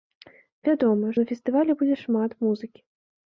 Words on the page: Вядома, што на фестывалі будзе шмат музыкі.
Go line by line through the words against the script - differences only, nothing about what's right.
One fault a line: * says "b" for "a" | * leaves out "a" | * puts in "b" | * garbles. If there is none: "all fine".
* leaves out "што"